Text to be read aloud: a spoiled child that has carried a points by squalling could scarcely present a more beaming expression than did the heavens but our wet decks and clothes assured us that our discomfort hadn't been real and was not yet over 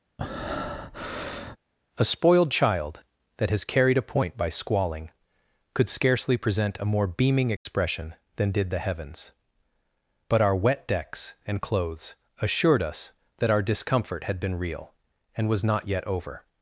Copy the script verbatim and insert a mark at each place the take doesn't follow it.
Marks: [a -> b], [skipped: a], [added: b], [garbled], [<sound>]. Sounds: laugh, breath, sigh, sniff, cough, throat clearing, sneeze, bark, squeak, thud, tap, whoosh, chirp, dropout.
[breath] a spoiled child that has carried a [points -> point] by squalling could scarcely present a more beaming expression [dropout] than did the heavens but our wet decks and clothes assured us that our discomfort [hadn't -> had] been real and was not yet over